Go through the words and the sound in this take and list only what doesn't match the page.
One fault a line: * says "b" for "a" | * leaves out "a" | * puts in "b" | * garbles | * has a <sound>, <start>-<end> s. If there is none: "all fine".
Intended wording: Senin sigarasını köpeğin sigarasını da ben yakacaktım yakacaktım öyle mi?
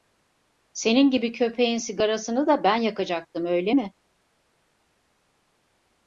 * says "gibi" for "sigarasını"
* leaves out "yakacaktım"